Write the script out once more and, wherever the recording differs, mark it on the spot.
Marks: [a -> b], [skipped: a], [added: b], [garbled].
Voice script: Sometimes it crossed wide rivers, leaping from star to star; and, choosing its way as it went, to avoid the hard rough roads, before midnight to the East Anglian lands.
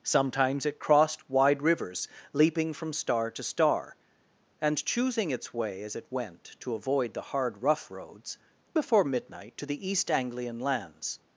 Sometimes it crossed wide rivers, leaping from star to star; and, choosing its way as it went, to avoid the hard rough roads, before midnight to the East Anglian lands.